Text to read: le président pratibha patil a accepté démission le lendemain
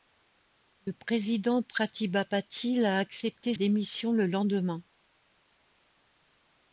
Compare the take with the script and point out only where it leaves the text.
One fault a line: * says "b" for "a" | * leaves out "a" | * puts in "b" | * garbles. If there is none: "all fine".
all fine